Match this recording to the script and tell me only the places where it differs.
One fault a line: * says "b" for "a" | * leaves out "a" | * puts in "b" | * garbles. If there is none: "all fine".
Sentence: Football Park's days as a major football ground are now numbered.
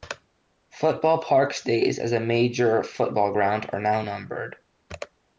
all fine